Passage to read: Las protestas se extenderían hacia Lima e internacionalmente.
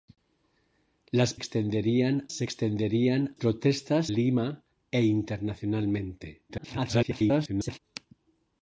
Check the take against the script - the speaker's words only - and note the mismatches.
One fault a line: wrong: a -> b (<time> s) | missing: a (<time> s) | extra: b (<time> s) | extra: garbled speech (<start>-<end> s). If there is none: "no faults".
wrong: protestas -> extenderían (1.3 s)
wrong: hacia -> protestas (3.3 s)
extra: garbled speech (6.5-7.8 s)